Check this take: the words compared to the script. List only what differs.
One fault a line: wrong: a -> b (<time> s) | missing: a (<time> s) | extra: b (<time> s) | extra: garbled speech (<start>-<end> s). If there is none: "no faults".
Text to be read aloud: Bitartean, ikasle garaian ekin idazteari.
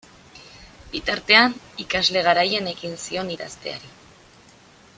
extra: zion (3.0 s)